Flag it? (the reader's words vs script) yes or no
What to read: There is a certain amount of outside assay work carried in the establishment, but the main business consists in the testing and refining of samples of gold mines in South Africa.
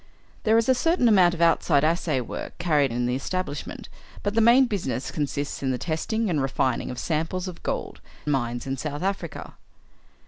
no